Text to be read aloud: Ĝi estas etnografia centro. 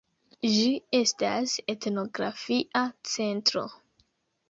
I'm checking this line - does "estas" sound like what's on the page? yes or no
yes